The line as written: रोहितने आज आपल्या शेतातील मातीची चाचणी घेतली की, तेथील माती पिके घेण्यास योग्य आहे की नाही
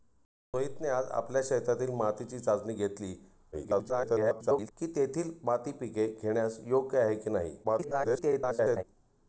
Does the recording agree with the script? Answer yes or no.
no